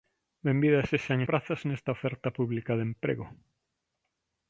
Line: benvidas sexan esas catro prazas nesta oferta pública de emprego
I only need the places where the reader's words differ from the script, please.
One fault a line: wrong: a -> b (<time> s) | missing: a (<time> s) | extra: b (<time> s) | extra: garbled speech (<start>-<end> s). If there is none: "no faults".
missing: esas catro (1.2 s)